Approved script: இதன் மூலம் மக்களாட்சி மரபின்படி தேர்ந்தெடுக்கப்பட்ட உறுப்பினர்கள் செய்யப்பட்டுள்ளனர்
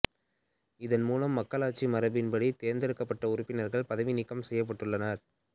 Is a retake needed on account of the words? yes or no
yes